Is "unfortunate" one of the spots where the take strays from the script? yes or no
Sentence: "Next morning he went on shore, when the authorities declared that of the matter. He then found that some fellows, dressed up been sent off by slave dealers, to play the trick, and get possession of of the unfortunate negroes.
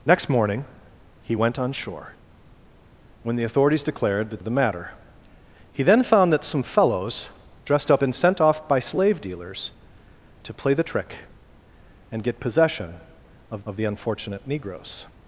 no